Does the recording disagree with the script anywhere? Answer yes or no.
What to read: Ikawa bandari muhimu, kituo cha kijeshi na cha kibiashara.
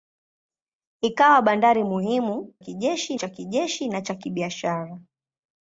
yes